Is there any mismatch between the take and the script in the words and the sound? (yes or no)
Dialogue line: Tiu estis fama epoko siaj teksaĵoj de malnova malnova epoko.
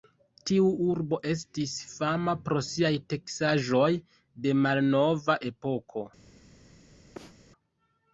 yes